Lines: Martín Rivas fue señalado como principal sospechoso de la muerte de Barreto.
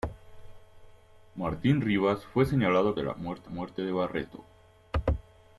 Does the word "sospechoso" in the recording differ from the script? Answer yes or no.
yes